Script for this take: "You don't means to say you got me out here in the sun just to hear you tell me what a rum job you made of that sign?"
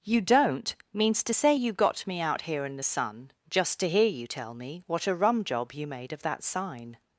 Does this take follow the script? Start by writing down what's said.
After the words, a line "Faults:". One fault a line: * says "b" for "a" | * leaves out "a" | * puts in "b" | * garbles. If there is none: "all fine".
"You don't means to say you got me out here in the sun just to hear you tell me what a rum job you made of that sign?"
Faults:
all fine